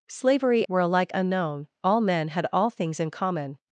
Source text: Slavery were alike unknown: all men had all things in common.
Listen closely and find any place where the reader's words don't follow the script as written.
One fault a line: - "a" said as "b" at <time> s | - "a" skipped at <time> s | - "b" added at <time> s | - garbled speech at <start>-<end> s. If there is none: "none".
none